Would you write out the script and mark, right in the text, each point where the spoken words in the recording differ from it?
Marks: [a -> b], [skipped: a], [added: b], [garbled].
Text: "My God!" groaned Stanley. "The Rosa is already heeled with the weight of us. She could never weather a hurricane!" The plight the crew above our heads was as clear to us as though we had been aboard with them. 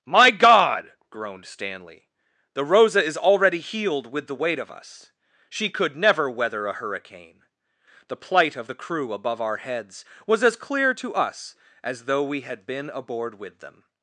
"My God!" groaned Stanley. "The Rosa is already heeled with the weight of us. She could never weather a hurricane!" The plight [added: of] the crew above our heads was as clear to us as though we had been aboard with them.